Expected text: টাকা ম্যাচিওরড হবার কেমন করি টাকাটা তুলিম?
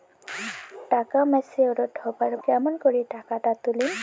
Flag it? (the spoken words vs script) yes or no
no